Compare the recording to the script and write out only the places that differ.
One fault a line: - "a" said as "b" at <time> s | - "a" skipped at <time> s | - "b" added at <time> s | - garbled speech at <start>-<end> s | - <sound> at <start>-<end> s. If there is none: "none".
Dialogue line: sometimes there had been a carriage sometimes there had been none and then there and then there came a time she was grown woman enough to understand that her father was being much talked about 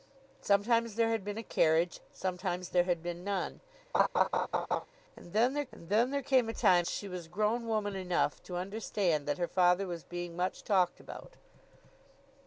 - laugh at 3.9-4.9 s